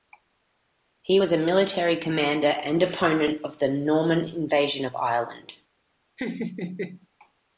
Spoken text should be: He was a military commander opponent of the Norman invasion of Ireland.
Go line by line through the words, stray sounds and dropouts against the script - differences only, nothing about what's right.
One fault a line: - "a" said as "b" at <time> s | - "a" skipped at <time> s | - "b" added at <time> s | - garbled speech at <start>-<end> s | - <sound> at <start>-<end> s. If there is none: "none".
- "and" added at 2.5 s
- laugh at 6.2-7.1 s